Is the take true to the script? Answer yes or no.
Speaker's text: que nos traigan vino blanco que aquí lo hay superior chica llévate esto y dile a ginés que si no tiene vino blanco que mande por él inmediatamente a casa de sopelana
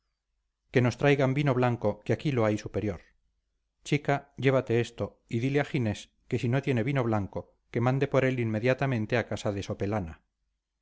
yes